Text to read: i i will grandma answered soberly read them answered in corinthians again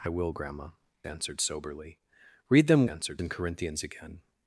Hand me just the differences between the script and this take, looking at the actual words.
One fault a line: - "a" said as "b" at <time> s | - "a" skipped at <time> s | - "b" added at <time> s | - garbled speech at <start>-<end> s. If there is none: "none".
none